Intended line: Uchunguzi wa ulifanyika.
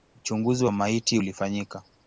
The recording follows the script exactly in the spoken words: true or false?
false